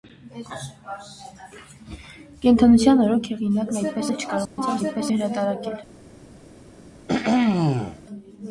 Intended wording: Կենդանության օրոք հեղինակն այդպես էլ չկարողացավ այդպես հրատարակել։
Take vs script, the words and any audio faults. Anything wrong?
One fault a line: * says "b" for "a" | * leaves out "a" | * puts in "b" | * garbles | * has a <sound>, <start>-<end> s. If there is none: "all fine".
* has a dropout, 4.5-4.6 s
* has a throat clearing, 7.1-8.0 s